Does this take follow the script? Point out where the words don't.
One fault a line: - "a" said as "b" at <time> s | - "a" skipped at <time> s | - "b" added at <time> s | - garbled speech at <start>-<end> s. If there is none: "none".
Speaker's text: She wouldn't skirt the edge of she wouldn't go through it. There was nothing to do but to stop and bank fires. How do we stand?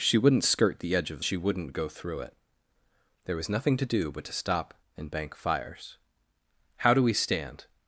none